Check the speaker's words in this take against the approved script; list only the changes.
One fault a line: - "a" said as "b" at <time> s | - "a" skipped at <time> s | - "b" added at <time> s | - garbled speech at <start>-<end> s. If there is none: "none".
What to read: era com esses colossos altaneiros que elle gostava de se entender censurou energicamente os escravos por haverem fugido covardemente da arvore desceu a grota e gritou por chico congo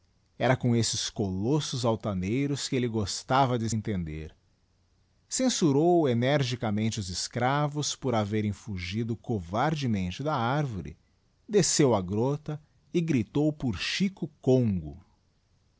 - "se" skipped at 3.7 s